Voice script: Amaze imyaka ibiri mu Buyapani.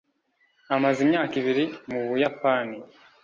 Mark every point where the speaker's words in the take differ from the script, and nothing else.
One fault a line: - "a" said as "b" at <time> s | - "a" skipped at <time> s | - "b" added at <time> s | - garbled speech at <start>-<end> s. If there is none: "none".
none